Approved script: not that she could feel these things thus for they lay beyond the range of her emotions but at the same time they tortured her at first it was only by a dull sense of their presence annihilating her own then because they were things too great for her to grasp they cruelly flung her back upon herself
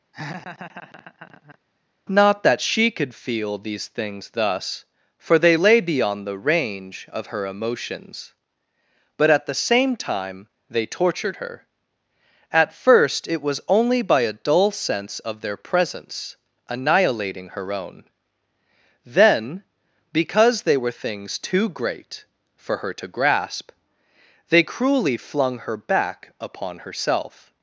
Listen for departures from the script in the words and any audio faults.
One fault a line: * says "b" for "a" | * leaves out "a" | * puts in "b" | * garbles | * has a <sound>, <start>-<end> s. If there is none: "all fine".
* has a laugh, 0.1-1.6 s